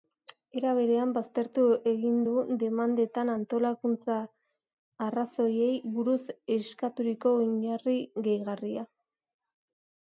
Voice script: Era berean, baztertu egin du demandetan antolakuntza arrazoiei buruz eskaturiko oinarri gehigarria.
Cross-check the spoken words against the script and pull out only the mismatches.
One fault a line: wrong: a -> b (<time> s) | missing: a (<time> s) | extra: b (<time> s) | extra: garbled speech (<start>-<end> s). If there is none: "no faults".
no faults